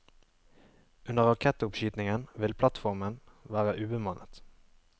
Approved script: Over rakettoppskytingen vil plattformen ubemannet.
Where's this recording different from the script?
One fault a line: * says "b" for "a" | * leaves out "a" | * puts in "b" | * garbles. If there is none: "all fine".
* says "Under" for "Over"
* puts in "være"